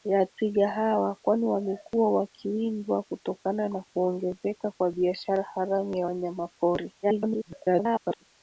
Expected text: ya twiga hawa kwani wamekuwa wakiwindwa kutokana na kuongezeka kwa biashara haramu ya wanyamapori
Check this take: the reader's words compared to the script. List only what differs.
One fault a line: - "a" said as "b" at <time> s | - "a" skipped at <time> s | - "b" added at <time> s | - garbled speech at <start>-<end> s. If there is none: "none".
- garbled speech at 7.0-8.2 s